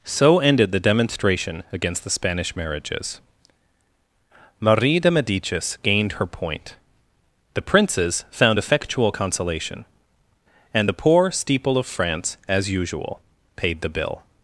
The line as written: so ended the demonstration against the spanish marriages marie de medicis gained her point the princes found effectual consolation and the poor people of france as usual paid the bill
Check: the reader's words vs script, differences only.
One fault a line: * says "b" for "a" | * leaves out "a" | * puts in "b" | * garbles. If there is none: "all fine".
* says "steeple" for "people"